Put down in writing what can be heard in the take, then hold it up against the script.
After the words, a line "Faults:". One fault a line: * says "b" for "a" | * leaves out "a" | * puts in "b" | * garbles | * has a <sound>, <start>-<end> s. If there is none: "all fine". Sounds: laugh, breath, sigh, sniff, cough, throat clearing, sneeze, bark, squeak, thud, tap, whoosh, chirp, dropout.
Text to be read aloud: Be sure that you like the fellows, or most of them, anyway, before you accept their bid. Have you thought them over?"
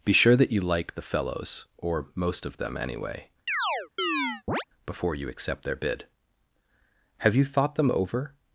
Be sure that you like the fellows, or most of them, anyway, before you accept their bid. Have you thought them over?"
Faults:
* has a chirp, 3.5-4.6 s